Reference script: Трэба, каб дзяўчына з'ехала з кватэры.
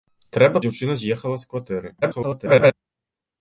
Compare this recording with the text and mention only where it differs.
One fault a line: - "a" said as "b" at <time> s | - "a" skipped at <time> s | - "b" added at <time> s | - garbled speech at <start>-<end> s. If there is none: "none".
- "каб" skipped at 0.6 s
- garbled speech at 2.0-2.7 s